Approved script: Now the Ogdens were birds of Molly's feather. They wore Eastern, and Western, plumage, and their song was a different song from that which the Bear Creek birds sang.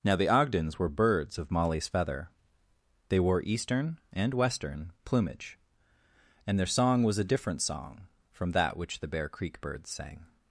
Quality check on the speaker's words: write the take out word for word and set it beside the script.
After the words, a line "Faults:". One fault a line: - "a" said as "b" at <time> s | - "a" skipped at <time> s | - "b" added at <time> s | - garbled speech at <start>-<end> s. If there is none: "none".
Now the Ogdens were birds of Molly's feather. They wore Eastern, and Western, plumage, and their song was a different song from that which the Bear Creek birds sang.
Faults:
none